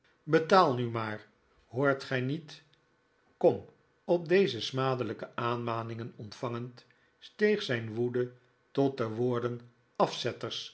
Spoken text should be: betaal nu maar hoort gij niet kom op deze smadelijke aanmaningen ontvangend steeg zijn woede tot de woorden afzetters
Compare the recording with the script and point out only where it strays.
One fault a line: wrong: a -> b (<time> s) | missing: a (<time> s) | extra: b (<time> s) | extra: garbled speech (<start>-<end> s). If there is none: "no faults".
no faults